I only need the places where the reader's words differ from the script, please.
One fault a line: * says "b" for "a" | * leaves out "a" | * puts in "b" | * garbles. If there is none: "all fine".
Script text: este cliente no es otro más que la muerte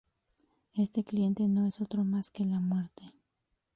all fine